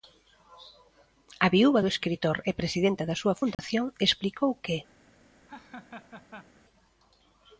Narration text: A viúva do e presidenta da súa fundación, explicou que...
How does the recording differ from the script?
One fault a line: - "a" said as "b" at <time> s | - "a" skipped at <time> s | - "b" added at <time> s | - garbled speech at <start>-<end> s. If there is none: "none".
- "escritor" added at 1.9 s